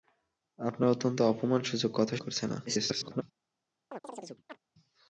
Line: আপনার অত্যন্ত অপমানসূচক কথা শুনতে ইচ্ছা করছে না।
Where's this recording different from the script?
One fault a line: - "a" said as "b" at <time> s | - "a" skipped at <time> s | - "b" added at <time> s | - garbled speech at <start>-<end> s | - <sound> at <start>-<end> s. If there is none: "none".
- "শুনতে ইচ্ছা" skipped at 2.1 s
- garbled speech at 2.7-3.2 s
- chirp at 3.9-4.6 s